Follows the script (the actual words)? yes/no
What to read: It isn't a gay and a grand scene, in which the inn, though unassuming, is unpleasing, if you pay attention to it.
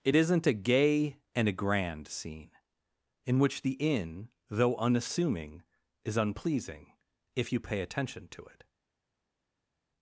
yes